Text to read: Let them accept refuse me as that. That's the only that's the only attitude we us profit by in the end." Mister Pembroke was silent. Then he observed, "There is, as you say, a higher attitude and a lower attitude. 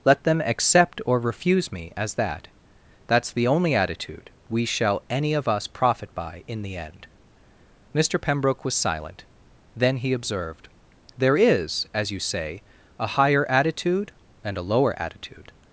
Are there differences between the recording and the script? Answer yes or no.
yes